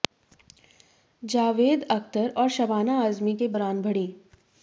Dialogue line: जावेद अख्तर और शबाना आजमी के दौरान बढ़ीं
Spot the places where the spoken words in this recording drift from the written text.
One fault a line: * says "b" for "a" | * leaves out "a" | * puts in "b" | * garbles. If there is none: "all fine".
all fine